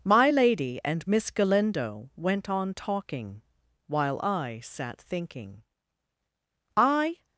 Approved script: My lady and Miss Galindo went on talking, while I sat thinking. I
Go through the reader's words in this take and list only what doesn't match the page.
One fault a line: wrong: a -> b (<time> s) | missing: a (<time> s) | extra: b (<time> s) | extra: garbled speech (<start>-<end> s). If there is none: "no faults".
no faults